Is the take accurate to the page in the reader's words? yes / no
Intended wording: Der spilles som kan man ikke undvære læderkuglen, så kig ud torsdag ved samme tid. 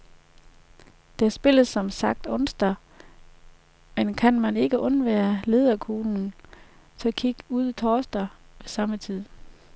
no